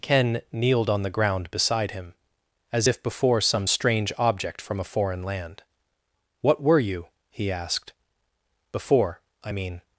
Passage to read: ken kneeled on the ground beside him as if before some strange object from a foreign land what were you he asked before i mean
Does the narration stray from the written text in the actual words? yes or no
no